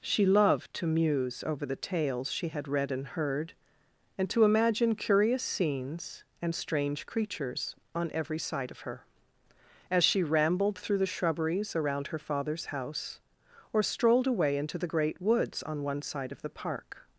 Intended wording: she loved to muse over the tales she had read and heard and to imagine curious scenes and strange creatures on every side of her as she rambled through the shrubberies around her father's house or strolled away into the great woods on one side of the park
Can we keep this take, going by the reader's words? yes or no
yes